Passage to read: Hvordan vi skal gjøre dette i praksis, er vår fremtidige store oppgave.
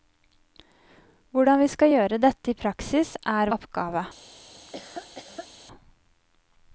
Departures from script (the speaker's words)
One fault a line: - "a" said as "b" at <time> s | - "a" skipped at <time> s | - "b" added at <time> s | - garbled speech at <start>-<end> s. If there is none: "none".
- "vår fremtidige store" skipped at 3.5 s